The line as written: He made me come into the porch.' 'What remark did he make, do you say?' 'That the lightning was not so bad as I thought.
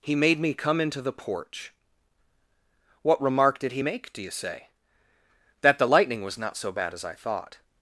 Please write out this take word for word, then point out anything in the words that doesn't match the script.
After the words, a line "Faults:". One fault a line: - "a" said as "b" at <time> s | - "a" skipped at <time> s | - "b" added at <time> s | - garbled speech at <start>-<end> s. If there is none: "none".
He made me come into the porch.' 'What remark did he make, do you say?' 'That the lightning was not so bad as I thought.
Faults:
none